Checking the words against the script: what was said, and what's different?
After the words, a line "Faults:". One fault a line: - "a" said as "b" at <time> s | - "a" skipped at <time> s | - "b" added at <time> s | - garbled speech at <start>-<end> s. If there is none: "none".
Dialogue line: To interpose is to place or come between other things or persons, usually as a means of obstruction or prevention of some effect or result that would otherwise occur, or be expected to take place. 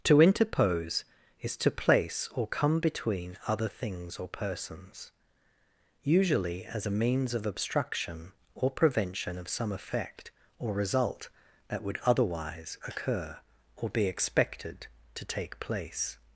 To interpose is to place or come between other things or persons, usually as a means of obstruction or prevention of some effect or result that would otherwise occur, or be expected to take place.
Faults:
none